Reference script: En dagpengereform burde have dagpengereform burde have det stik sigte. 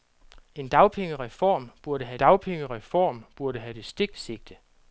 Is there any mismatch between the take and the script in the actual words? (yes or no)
no